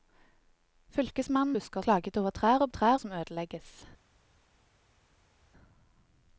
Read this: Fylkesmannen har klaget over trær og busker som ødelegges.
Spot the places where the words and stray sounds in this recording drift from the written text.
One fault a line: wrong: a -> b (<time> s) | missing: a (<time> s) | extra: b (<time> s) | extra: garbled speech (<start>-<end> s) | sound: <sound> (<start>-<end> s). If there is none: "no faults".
wrong: har -> busker (1.5 s)
wrong: busker -> trær (2.7 s)